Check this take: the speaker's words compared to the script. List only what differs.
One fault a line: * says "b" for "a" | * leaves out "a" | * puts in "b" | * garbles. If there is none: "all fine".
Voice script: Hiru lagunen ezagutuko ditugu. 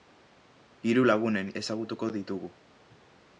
all fine